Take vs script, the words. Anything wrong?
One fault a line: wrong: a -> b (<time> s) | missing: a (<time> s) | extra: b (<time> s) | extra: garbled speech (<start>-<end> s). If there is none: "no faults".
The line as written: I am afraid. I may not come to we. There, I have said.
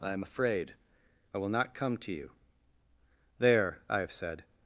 wrong: may -> will (1.4 s)
wrong: we -> you (2.1 s)